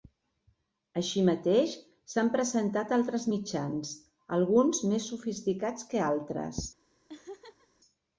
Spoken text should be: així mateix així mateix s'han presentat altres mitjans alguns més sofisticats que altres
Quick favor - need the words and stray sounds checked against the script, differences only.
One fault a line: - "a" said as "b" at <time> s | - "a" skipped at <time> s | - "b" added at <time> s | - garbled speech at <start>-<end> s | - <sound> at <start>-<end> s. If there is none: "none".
- "així mateix" skipped at 1.8 s
- laugh at 7.1-7.7 s